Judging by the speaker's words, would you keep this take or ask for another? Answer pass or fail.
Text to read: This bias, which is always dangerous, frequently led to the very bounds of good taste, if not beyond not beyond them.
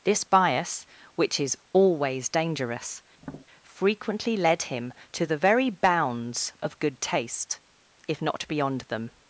fail